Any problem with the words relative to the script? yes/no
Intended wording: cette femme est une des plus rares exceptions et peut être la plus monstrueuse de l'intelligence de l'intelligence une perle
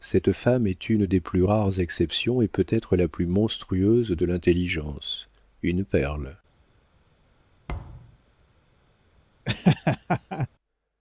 yes